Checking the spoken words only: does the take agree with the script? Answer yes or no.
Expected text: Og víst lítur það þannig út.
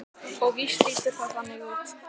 yes